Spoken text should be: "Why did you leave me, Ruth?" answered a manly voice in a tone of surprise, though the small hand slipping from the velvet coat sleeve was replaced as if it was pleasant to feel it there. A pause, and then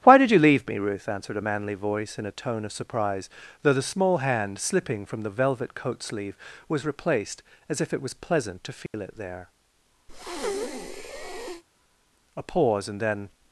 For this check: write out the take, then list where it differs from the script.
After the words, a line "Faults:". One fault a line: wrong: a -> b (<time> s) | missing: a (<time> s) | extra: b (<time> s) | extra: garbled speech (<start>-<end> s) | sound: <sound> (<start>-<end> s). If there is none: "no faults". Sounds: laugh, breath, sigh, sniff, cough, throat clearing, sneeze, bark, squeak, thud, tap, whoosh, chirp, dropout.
"Why did you leave me, Ruth?" answered a manly voice in a tone of surprise, though the small hand slipping from the velvet coat sleeve was replaced as if it was pleasant to feel it there. A pause, and then
Faults:
sound: dropout (8.9-8.9 s)
sound: breath (10.1-11.6 s)